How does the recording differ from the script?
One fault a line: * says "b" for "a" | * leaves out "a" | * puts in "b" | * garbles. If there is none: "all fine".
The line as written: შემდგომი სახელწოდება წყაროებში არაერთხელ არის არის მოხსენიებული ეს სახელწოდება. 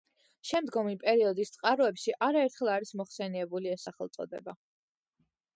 * says "პერიოდის" for "სახელწოდება"
* leaves out "არის"